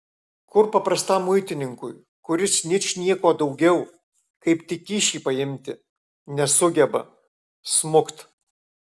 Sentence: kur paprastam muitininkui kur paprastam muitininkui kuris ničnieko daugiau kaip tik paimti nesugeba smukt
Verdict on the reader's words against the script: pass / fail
fail